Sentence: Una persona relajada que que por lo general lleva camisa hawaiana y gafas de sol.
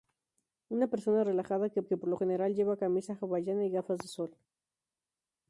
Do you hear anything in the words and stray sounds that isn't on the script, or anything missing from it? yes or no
no